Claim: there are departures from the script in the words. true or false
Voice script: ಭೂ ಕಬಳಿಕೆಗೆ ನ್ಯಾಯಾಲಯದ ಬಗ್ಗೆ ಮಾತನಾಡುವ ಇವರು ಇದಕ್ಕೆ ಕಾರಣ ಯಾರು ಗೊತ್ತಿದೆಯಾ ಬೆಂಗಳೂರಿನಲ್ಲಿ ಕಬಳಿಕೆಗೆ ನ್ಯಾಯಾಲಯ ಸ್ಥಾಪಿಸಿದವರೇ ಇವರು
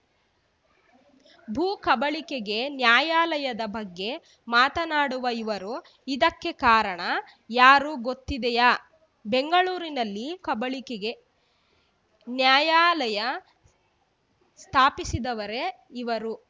false